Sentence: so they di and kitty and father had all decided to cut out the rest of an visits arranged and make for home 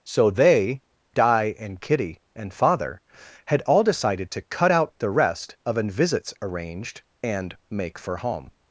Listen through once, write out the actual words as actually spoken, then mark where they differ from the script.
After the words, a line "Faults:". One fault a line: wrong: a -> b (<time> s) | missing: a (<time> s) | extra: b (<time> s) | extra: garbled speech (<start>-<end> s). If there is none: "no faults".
so they di and kitty and father had all decided to cut out the rest of an visits arranged and make for home
Faults:
no faults